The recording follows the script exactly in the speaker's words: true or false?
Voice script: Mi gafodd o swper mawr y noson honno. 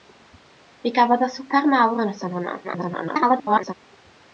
false